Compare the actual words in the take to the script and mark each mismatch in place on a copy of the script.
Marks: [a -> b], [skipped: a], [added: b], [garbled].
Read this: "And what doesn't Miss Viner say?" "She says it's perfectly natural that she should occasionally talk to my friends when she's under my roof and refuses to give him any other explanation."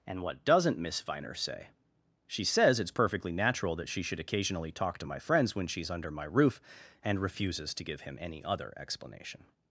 "And what doesn't Miss Viner say?" "She says it's perfectly natural that she should occasionally talk to my friends when she's under my roof and refuses to give him any other explanation."